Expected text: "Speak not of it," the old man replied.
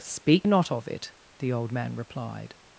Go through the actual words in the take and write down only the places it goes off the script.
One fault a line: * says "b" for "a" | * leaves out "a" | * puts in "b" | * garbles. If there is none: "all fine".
all fine